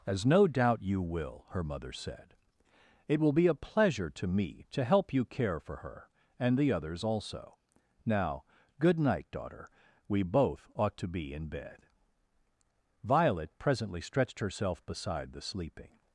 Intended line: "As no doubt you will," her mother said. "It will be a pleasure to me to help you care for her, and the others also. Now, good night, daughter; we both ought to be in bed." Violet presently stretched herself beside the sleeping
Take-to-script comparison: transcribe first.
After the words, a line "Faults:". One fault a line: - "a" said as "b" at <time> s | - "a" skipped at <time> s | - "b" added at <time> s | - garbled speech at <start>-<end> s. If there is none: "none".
"As no doubt you will," her mother said. "It will be a pleasure to me to help you care for her, and the others also. Now, good night, daughter; we both ought to be in bed." Violet presently stretched herself beside the sleeping
Faults:
none